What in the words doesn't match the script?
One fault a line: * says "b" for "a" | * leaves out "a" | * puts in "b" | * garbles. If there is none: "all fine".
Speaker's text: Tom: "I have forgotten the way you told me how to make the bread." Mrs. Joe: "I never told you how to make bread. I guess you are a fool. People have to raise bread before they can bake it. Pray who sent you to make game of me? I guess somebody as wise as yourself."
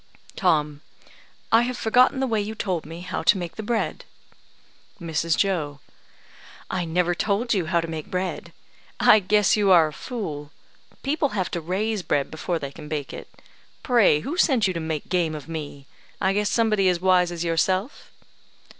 all fine